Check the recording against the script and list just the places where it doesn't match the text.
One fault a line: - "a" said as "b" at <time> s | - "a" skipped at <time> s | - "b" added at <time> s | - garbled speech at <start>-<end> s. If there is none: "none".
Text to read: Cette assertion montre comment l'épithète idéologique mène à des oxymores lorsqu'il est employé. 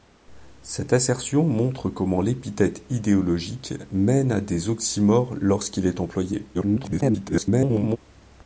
- garbled speech at 6.5-8.0 s